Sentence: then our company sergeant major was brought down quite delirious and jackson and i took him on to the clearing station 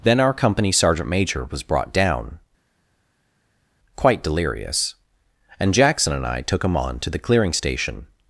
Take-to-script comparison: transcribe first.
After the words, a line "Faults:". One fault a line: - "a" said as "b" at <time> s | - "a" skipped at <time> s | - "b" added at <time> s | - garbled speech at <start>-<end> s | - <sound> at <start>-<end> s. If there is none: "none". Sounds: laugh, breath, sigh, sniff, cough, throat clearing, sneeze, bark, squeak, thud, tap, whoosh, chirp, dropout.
then our company sergeant major was brought down quite delirious and jackson and i took him on to the clearing station
Faults:
none